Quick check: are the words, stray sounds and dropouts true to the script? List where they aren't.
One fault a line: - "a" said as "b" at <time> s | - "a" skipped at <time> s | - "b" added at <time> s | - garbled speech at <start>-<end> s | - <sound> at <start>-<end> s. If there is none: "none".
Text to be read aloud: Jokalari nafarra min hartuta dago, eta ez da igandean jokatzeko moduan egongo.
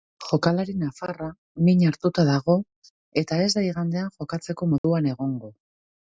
- dropout at 4.8-4.8 s